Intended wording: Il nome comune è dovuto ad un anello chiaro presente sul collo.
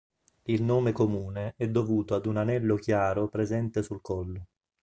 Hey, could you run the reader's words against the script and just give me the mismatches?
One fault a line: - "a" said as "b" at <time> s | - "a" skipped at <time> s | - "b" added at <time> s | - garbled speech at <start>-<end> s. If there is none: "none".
none